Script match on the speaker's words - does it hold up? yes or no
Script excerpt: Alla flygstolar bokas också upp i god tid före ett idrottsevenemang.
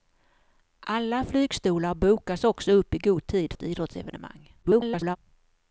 no